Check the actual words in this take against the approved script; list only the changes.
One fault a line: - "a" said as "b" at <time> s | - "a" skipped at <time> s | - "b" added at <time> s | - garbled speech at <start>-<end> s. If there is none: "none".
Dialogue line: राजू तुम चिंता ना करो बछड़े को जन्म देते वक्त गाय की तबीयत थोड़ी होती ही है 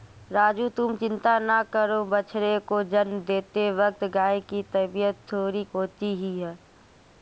none